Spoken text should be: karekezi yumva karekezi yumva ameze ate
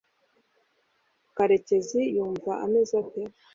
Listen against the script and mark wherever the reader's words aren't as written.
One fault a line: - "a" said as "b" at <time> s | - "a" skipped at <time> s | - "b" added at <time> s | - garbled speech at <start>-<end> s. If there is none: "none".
- "karekezi yumva" skipped at 2.5 s